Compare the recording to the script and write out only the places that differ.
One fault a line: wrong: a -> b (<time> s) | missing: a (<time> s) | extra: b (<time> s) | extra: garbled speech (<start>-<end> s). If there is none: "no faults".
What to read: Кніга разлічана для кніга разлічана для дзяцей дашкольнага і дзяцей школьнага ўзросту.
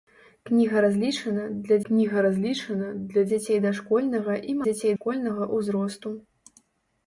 no faults